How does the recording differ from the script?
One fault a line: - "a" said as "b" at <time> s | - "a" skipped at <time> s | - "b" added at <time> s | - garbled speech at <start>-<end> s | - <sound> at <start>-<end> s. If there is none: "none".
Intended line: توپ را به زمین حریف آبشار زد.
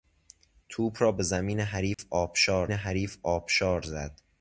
- dropout at 1.9-2.0 s
- "حریف آبشار" added at 2.7 s